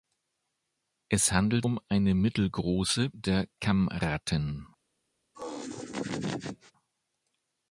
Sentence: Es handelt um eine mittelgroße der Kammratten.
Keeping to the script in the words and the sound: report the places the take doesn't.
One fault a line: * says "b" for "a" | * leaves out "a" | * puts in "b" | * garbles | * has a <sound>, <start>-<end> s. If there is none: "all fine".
* has a laugh, 5.3-6.7 s